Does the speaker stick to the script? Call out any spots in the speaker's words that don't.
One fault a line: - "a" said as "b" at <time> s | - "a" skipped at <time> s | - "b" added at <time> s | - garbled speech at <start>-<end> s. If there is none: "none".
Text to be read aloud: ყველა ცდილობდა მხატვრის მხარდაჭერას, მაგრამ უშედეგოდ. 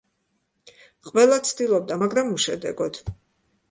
- "მხატვრის მხარდაჭერას" skipped at 2.0 s